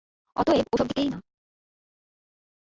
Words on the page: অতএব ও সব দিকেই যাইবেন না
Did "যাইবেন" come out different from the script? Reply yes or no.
yes